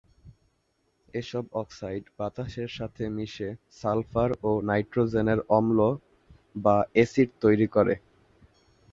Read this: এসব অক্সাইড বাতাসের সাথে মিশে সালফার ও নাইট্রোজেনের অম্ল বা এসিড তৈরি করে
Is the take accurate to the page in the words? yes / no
yes